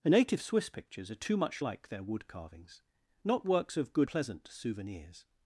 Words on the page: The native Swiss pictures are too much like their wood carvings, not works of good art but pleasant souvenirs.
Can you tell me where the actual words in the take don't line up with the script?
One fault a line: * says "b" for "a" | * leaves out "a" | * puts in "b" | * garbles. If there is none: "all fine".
* leaves out "art but"